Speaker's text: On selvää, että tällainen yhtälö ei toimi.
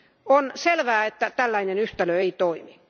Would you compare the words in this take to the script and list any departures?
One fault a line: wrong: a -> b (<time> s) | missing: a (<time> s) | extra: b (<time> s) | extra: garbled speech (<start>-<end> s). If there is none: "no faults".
no faults